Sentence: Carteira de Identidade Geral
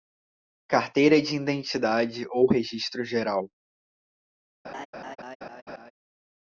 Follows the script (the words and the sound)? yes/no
no